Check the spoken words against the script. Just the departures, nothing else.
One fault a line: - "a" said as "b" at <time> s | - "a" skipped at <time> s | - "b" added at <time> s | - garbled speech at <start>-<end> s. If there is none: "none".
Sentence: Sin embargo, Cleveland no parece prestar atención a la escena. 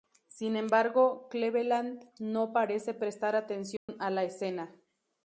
none